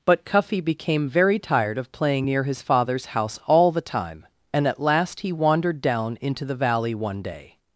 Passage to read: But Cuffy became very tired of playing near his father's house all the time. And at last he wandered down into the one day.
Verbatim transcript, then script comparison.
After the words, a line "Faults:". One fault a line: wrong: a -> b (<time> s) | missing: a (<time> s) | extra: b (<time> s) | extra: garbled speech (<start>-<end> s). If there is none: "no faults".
But Cuffy became very tired of playing near his father's house all the time. And at last he wandered down into the valley one day.
Faults:
extra: valley (6.6 s)